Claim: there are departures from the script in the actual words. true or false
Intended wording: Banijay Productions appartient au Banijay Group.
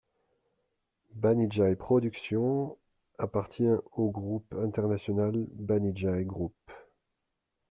true